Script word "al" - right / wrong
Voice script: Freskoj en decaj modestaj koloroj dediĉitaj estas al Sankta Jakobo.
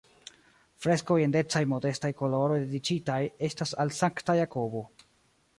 right